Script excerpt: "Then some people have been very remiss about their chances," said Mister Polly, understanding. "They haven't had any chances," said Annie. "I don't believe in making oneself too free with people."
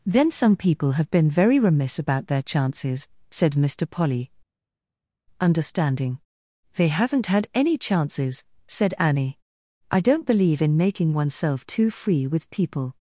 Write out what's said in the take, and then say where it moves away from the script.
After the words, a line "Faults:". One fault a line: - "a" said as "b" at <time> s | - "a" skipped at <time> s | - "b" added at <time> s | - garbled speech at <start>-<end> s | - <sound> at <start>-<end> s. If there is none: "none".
"Then some people have been very remiss about their chances," said Mister Polly, understanding. "They haven't had any chances," said Annie. "I don't believe in making oneself too free with people."
Faults:
none